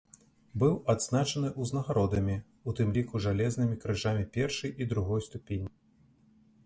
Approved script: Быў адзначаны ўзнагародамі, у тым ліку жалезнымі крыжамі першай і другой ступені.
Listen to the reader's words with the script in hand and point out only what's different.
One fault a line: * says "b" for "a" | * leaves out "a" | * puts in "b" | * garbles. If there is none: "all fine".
all fine